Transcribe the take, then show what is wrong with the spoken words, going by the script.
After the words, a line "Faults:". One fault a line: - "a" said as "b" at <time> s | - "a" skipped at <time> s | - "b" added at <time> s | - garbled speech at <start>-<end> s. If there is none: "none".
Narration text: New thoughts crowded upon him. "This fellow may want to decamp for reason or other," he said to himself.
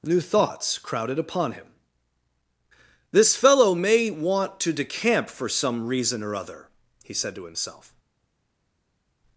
New thoughts crowded upon him. "This fellow may want to decamp for some reason or other," he said to himself.
Faults:
- "some" added at 5.5 s